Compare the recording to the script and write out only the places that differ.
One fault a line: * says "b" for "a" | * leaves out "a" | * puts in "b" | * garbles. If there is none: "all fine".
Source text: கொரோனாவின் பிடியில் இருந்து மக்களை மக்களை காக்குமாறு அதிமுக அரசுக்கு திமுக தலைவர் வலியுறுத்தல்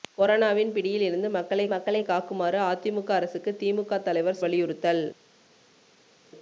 all fine